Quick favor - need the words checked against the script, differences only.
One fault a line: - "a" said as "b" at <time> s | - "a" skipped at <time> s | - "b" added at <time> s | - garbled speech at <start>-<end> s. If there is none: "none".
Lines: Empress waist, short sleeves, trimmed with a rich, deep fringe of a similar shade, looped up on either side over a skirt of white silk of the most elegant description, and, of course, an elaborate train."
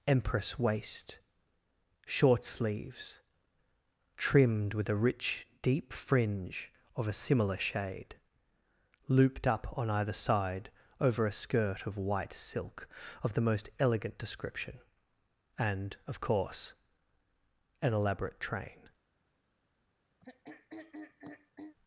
none